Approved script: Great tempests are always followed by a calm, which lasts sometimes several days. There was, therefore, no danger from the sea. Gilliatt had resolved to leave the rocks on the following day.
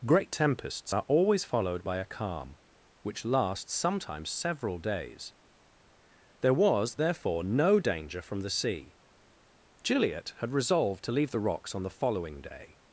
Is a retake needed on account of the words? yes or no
no